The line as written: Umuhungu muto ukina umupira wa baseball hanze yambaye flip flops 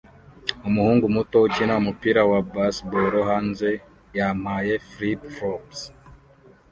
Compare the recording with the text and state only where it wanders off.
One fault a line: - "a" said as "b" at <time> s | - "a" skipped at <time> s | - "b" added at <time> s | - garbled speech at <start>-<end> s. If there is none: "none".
none